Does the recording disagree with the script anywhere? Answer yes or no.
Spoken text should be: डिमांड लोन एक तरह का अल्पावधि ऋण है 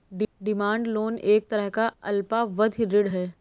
no